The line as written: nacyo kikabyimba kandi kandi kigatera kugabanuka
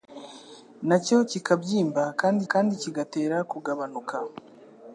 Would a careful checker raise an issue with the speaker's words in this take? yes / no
no